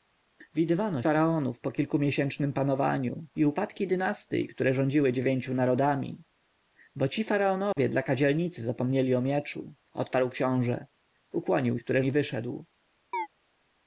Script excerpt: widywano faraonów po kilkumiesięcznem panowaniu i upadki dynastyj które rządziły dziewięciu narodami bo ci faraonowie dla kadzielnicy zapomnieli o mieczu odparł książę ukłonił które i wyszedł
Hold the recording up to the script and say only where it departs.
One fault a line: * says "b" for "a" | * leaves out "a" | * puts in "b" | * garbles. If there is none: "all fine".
all fine